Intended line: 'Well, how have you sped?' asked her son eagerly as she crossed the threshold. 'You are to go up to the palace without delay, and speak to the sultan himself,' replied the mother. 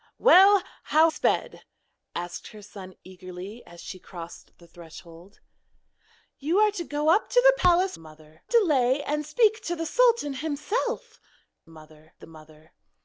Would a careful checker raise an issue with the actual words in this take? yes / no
yes